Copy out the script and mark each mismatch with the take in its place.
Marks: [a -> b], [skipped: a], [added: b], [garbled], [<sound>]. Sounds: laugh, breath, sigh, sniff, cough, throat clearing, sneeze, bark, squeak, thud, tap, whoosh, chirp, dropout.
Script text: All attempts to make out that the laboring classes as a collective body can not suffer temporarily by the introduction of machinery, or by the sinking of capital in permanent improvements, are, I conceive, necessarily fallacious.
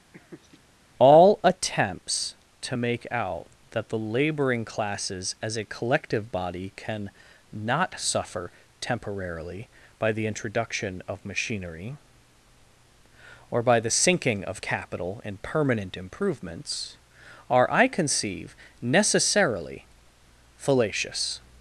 [laugh] All attempts to make out that the laboring classes as a collective body can not suffer temporarily by the introduction of machinery, or by the sinking of capital in permanent improvements, are, I conceive, necessarily fallacious.